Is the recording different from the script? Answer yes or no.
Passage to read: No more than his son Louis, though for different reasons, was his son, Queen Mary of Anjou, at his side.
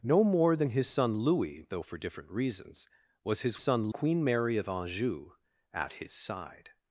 no